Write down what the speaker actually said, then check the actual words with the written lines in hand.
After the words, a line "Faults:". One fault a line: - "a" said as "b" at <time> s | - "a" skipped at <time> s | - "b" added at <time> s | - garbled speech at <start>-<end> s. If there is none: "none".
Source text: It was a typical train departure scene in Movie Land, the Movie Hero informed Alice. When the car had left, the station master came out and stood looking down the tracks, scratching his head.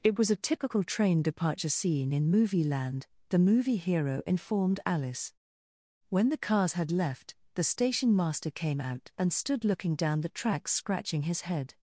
It was a typical train departure scene in Movie Land, the Movie Hero informed Alice. When the cars had left, the station master came out and stood looking down the tracks, scratching his head.
Faults:
- "car" said as "cars" at 6.4 s